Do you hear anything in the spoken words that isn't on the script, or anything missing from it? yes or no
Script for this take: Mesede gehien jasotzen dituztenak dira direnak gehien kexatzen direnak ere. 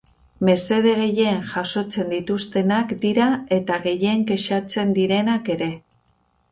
yes